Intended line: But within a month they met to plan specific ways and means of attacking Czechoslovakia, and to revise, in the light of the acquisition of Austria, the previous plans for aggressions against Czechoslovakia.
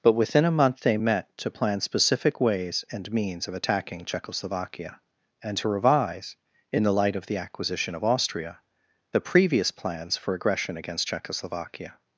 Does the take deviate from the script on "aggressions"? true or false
true